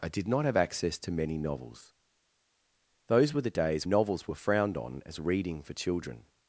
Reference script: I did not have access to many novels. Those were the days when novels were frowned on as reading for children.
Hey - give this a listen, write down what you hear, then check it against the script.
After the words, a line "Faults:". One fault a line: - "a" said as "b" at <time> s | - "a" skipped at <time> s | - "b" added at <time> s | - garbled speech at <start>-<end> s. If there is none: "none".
I did not have access to many novels. Those were the days novels were frowned on as reading for children.
Faults:
- "when" skipped at 3.9 s